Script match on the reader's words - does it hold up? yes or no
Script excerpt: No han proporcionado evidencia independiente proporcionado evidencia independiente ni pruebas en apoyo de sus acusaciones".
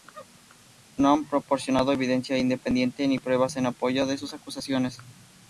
no